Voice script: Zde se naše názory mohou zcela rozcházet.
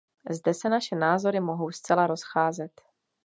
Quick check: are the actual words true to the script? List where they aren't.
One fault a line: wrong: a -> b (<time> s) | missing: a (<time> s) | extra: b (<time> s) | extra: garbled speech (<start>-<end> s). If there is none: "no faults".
no faults